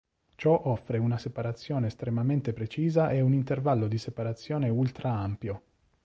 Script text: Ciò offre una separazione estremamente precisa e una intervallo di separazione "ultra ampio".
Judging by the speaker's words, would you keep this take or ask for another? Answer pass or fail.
fail